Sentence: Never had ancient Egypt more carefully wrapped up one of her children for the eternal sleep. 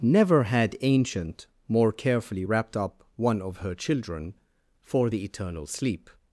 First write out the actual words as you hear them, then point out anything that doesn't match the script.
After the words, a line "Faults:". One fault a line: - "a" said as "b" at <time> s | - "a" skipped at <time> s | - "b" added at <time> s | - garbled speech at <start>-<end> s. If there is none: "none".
Never had ancient more carefully wrapped up one of her children for the eternal sleep.
Faults:
- "Egypt" skipped at 1.4 s